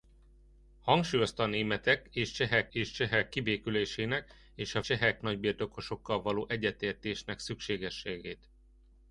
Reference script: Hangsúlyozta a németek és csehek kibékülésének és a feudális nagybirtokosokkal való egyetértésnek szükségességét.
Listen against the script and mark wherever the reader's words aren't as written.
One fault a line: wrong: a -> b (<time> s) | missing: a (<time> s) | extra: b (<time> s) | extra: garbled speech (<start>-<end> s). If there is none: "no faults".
extra: és csehek (2.7 s)
wrong: feudális -> csehek (4.8 s)